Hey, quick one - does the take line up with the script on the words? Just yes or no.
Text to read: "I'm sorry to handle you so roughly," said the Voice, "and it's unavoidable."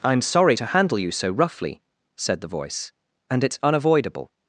yes